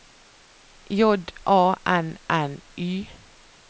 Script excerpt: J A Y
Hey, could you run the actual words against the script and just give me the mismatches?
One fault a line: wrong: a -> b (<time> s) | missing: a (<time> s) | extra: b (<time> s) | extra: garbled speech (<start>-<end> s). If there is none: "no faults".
extra: N N (1.9 s)